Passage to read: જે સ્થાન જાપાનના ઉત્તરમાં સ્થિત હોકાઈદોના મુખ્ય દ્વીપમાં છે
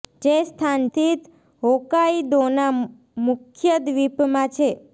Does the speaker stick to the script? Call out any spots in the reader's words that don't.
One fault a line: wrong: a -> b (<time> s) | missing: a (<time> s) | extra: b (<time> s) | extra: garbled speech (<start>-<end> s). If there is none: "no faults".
missing: જાપાનના ઉત્તરમાં (0.8 s)